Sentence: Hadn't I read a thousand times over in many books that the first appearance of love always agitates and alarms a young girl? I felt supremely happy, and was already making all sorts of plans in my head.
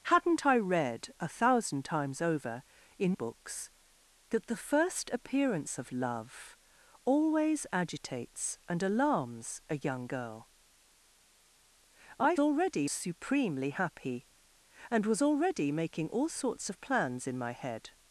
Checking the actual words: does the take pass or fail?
fail